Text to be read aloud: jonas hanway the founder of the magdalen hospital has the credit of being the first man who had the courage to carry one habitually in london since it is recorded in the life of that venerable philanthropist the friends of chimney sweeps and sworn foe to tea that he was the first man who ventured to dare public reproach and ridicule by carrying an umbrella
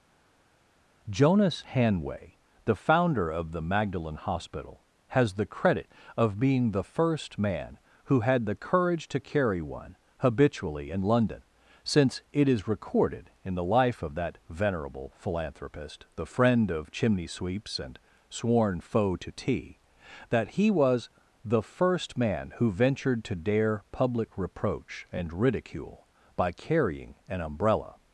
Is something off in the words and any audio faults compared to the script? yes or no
yes